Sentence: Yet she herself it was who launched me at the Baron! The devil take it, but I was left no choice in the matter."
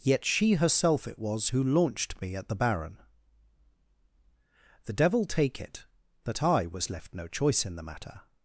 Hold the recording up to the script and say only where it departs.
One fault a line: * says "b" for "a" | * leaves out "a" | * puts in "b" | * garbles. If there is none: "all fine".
* says "that" for "but"